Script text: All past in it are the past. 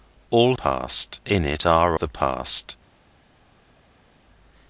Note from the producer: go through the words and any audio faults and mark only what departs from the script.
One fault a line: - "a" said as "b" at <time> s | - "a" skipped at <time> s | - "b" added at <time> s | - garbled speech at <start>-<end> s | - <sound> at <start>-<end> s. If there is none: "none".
none